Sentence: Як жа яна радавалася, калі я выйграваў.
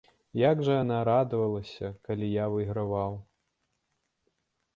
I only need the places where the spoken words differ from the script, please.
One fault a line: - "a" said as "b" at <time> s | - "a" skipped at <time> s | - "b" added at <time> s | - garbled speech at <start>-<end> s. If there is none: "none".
none